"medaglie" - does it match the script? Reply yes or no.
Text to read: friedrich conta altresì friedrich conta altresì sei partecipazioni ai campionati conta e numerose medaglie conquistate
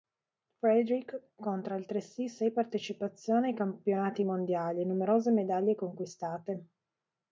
yes